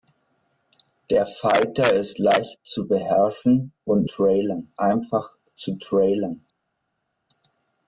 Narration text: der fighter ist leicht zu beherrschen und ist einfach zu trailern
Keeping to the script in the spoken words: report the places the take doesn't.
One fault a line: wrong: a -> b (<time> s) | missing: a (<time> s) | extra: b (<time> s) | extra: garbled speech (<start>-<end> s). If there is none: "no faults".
wrong: ist -> trailern (4.0 s)